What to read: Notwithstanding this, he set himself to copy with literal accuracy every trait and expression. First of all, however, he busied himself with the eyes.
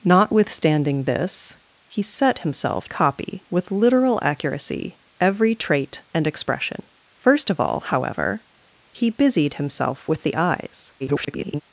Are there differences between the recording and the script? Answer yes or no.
yes